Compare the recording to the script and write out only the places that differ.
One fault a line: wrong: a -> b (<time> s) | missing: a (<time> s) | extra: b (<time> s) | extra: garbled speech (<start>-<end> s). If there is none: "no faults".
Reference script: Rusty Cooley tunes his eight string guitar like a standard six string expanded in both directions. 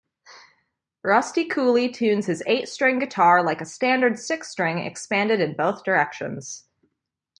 no faults